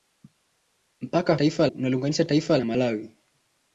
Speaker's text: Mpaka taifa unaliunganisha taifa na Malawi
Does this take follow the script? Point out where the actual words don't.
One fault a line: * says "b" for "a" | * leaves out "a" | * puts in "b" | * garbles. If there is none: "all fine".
all fine